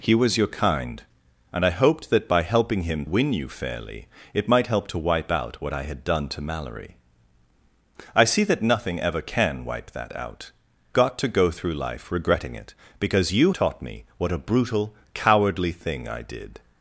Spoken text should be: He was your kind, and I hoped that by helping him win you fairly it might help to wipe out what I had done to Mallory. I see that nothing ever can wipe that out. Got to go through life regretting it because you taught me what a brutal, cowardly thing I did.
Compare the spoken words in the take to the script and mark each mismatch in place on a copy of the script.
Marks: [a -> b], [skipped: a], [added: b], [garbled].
He was your kind, and I hoped that by helping him win you fairly it might help to wipe out what I had done to Mallory. I see that nothing ever can wipe that out. Got to go through life regretting it because you taught me what a brutal, cowardly thing I did.